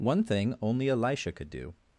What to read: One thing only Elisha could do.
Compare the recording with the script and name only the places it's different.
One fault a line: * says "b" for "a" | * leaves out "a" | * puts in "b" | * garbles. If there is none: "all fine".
all fine